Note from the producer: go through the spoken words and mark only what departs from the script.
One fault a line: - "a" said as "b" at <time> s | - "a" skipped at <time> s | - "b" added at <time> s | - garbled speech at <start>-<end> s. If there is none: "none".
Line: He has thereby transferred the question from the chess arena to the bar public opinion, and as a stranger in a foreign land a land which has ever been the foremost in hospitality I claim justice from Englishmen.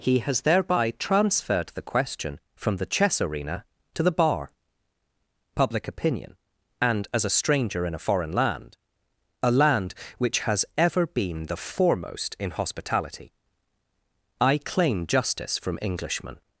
none